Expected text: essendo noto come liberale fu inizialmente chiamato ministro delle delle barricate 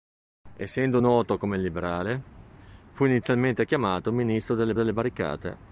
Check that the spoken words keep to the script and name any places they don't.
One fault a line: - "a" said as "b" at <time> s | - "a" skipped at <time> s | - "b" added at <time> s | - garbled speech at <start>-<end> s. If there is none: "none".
none